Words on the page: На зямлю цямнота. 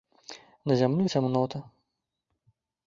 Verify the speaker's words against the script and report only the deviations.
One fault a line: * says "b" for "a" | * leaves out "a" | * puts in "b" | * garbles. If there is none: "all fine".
all fine